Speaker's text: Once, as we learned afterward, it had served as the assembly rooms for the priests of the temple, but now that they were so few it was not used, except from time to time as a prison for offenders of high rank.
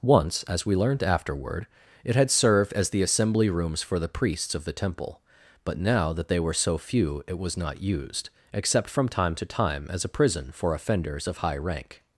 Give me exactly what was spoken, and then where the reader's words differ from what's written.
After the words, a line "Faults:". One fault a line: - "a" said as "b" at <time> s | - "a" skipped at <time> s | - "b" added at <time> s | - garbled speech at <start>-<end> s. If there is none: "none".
Once, as we learned afterward, it had served as the assembly rooms for the priests of the temple, but now that they were so few it was not used, except from time to time as a prison for offenders of high rank.
Faults:
none